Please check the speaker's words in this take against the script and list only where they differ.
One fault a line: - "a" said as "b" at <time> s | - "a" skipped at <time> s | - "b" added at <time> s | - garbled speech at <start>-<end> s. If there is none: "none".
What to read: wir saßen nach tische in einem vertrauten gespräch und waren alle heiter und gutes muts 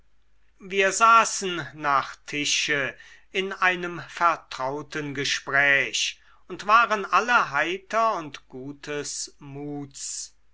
none